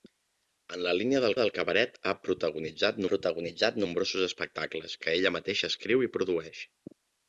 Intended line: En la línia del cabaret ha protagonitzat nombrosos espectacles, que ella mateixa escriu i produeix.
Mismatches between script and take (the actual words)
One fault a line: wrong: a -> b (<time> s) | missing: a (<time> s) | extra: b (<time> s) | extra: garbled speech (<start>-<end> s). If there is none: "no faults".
extra: del (1.4 s)
extra: protagonitzat (3.1 s)